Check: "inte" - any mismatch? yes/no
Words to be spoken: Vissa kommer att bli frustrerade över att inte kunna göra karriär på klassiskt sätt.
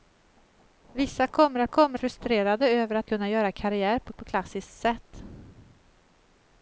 yes